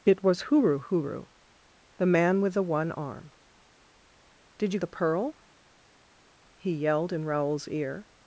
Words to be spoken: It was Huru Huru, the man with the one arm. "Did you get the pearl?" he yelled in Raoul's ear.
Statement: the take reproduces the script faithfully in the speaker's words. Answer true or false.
false